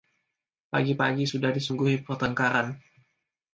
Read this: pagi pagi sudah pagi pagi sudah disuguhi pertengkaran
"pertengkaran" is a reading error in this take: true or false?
false